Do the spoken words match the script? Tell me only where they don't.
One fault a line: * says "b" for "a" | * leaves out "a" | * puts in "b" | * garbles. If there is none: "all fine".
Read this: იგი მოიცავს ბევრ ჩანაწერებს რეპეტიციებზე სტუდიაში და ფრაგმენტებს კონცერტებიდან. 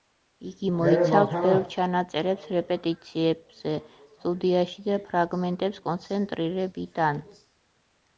all fine